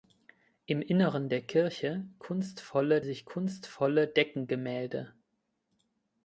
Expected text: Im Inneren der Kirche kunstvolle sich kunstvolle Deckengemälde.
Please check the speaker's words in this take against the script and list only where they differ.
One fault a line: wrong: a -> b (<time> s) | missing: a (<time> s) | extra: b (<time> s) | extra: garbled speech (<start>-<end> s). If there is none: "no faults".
no faults